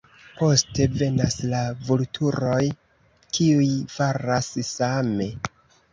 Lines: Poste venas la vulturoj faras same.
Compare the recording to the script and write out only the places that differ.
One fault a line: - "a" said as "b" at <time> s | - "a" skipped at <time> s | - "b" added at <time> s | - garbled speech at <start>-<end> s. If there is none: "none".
- "kiuj" added at 3.4 s